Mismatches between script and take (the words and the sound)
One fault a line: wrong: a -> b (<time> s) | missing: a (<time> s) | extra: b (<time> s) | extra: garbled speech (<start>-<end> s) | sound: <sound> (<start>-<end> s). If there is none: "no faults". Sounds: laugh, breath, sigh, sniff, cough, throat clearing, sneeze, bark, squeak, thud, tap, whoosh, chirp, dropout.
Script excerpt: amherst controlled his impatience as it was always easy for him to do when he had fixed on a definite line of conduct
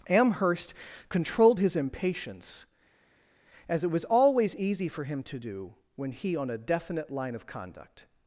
missing: had fixed (6.4 s)